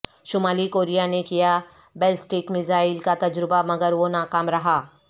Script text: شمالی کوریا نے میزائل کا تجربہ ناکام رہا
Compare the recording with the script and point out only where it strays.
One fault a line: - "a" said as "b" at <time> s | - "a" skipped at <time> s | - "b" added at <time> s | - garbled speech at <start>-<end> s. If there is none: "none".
- "کیا بیلسٹک" added at 1.2 s
- "مگر وہ" added at 3.6 s